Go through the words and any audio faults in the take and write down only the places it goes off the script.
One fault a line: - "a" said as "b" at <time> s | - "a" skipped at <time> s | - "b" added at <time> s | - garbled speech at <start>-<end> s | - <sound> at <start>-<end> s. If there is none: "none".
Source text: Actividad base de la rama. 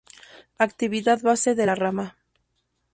none